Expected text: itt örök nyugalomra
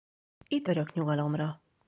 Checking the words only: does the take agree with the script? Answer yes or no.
yes